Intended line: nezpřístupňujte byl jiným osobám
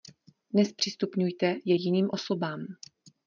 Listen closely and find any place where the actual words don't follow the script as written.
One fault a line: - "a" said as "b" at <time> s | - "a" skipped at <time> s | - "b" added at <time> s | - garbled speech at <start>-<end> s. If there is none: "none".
- "byl" said as "je" at 1.6 s